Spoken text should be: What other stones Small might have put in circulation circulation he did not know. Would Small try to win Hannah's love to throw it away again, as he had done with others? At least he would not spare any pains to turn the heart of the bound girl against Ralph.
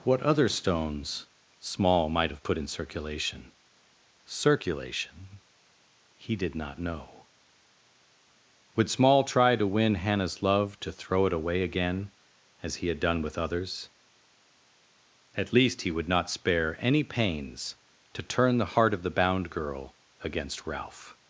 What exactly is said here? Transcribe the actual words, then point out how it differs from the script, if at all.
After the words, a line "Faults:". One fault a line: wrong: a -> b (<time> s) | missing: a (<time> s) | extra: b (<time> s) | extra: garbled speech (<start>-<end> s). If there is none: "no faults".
What other stones Small might have put in circulation circulation he did not know. Would Small try to win Hannah's love to throw it away again, as he had done with others? At least he would not spare any pains to turn the heart of the bound girl against Ralph.
Faults:
no faults